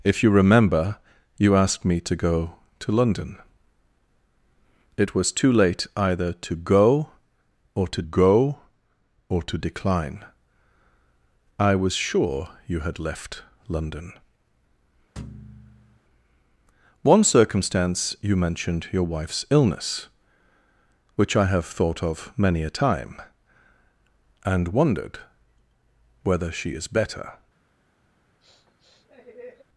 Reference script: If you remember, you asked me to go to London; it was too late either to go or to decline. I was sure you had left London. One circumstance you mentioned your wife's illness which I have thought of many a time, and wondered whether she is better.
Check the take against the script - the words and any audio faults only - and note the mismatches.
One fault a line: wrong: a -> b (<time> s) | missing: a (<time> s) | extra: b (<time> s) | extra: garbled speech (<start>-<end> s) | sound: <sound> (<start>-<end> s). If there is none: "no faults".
extra: go or to (8.0 s)
sound: thud (15.2-16.0 s)
sound: sniff (28.4-29.6 s)